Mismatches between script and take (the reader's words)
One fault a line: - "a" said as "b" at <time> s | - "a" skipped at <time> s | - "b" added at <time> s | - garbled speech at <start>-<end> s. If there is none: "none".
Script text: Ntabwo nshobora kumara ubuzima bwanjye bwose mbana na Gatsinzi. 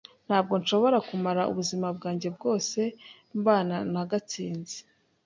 none